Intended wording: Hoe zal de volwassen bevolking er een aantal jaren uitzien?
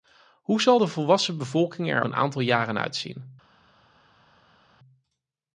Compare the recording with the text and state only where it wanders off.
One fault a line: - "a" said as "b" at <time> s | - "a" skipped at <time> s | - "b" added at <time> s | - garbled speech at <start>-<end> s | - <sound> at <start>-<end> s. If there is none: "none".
none